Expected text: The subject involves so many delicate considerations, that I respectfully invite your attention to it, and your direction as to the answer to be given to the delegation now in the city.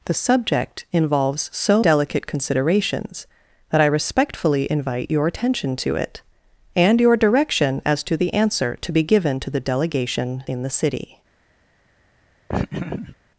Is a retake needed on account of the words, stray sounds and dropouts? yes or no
yes